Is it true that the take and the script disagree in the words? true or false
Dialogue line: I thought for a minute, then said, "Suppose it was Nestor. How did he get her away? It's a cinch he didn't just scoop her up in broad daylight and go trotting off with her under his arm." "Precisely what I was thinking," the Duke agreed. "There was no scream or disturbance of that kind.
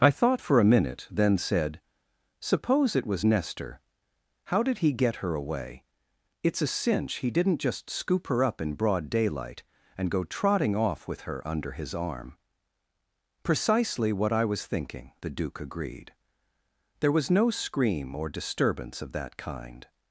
false